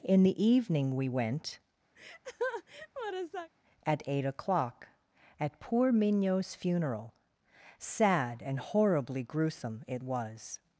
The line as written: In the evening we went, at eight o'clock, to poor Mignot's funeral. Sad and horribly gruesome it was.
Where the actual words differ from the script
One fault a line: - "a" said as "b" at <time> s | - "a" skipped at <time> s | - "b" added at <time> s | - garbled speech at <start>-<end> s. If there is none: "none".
- "to" said as "at" at 5.4 s